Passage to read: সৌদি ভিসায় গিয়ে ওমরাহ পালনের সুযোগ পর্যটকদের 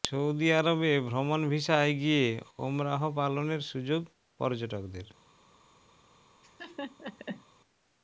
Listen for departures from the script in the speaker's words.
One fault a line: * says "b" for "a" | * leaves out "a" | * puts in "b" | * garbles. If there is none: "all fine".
* puts in "আরবে ভ্রমণ"